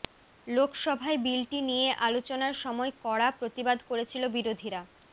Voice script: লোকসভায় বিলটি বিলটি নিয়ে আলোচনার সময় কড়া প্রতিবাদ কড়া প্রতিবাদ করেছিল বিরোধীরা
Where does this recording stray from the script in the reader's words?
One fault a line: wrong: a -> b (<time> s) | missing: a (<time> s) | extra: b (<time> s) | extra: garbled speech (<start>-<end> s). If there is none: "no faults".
missing: বিলটি (1.6 s)
missing: কড়া প্রতিবাদ (3.8 s)